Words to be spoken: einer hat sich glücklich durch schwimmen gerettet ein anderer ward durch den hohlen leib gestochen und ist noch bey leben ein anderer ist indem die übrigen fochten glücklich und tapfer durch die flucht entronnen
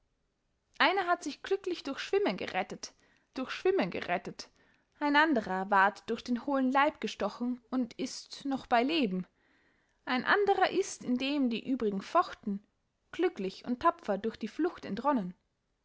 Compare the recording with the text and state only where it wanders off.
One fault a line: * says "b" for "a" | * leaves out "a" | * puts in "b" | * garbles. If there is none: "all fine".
* puts in "durch schwimmen gerettet"